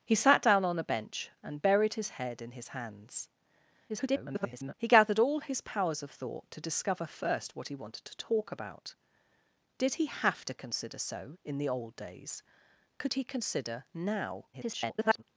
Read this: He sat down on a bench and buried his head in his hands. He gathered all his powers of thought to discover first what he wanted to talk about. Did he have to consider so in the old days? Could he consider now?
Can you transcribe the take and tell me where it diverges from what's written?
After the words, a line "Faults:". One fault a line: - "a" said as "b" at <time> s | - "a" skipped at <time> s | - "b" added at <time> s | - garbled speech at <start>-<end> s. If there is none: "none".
He sat down on a bench and buried his head in his hands. [garbled] He gathered all his powers of thought to discover first what he wanted to talk about. Did he have to consider so in the old days? Could he consider now? [garbled]
Faults:
- garbled speech at 3.9-4.7 s
- garbled speech at 14.5-15.2 s